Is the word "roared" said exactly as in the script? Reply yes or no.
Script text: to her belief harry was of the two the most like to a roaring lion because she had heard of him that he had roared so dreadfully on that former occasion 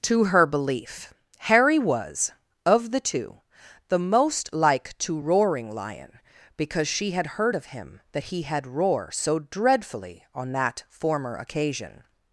no